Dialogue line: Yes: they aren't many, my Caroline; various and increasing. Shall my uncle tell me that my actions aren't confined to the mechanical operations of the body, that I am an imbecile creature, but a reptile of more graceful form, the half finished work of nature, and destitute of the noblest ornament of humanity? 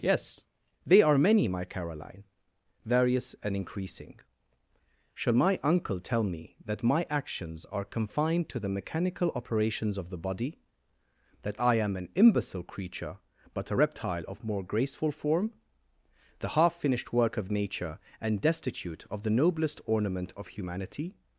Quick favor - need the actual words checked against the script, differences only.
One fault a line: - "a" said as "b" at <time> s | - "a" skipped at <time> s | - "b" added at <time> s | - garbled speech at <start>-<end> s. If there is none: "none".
- "aren't" said as "are" at 1.0 s
- "aren't" said as "are" at 7.7 s